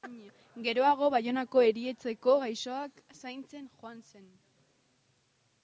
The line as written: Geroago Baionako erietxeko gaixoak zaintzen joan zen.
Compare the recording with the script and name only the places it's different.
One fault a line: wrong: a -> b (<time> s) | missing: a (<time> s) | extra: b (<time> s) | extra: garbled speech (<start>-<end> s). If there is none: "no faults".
no faults